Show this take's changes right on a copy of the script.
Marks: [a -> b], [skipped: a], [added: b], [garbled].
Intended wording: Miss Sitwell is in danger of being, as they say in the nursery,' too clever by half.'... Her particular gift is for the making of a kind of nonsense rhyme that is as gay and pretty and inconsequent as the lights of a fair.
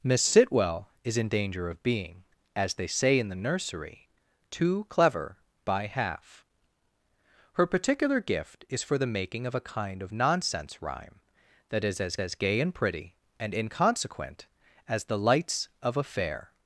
Miss Sitwell is in danger of being, as they say in the nursery,' too clever by half.'... Her particular gift is for the making of a kind of nonsense rhyme that is as [added: as] gay and pretty and inconsequent as the lights of a fair.